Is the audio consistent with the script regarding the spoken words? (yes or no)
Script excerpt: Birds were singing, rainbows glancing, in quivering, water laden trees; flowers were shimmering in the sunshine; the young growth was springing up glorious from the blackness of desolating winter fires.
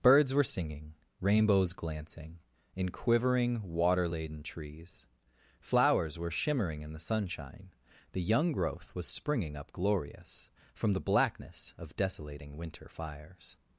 yes